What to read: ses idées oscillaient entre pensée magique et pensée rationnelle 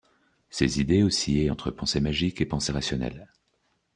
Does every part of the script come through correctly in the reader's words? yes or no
yes